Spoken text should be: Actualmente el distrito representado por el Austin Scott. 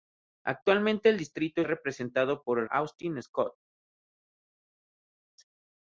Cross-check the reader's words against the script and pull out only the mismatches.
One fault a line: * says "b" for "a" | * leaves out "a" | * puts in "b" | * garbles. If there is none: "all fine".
all fine